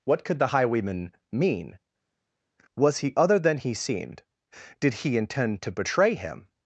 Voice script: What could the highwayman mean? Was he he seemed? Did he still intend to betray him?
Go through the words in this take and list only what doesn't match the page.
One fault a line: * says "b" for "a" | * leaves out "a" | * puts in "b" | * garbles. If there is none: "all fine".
* puts in "other than"
* leaves out "still"